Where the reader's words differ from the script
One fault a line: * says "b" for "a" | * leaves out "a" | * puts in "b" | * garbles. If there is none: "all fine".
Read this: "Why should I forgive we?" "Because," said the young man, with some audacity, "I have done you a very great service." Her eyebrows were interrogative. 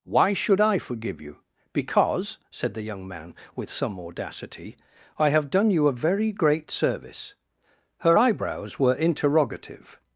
* says "you" for "we"